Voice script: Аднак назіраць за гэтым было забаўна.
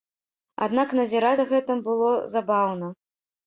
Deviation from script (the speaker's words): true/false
false